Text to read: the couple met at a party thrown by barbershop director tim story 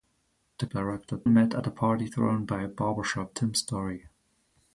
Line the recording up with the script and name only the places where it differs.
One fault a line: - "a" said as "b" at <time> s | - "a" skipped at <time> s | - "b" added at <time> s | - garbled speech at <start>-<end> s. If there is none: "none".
- "couple" said as "director" at 0.7 s
- "director" skipped at 3.4 s